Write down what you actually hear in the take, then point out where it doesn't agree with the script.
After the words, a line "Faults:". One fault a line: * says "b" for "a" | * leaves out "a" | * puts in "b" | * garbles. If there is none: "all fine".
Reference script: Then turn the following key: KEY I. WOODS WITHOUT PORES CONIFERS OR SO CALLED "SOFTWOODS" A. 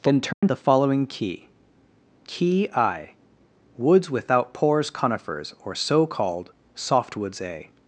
Then turn the following key: KEY I. WOODS WITHOUT PORES CONIFERS OR SO CALLED "SOFTWOODS" A.
Faults:
all fine